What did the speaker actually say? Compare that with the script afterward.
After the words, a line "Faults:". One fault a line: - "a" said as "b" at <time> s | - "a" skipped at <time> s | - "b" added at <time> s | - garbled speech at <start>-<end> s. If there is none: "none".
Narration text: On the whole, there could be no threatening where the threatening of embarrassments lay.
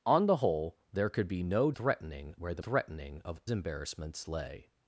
On the whole, there could be no threatening where the threatening of embarrassments lay.
Faults:
none